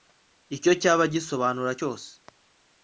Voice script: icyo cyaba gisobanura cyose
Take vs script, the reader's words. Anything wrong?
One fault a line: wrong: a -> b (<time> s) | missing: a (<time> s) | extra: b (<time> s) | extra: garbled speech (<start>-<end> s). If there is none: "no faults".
no faults